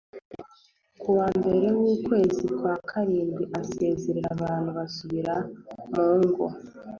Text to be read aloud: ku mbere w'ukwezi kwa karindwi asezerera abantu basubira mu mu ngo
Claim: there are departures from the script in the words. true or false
true